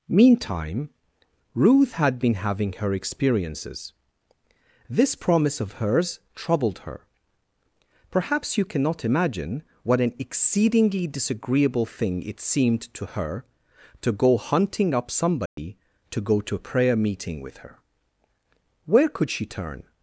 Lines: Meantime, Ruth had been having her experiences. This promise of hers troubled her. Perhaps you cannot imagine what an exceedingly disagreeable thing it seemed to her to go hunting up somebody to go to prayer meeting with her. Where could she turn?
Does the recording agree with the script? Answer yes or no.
no